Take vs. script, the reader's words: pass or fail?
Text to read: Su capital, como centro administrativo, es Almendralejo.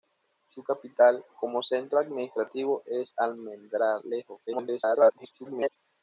fail